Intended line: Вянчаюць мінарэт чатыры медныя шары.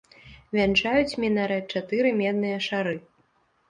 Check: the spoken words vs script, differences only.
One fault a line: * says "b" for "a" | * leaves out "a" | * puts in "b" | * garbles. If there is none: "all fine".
all fine